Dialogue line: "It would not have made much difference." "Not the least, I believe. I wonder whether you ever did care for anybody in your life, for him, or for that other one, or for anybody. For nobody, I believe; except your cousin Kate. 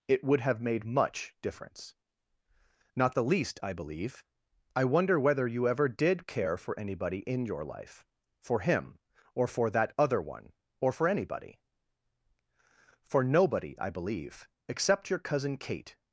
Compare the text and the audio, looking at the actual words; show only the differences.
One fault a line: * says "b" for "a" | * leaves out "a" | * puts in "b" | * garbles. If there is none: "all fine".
* leaves out "not"